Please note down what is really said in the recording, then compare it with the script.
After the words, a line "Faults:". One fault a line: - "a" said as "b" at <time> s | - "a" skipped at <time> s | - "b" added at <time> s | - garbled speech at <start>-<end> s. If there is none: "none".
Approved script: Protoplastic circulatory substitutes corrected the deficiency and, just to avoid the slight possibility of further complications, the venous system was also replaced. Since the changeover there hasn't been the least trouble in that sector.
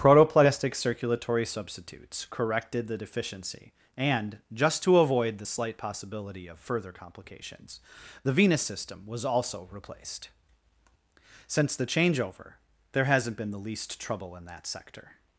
Protoplastic circulatory substitutes corrected the deficiency and, just to avoid the slight possibility of further complications, the venous system was also replaced. Since the changeover there hasn't been the least trouble in that sector.
Faults:
none